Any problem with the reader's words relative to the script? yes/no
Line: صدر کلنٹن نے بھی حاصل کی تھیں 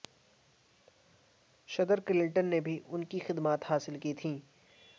yes